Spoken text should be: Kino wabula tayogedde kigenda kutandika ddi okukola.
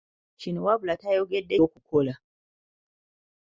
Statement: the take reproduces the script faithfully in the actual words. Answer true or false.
false